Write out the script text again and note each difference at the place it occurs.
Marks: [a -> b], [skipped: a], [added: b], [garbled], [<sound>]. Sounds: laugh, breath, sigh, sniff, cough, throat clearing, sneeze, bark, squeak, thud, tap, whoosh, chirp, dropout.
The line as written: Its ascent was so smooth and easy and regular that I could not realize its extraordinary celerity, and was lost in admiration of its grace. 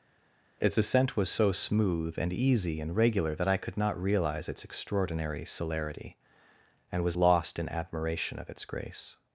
Its ascent was so smooth and easy and regular that I could not realize its extraordinary celerity, and was lost in admiration of its grace.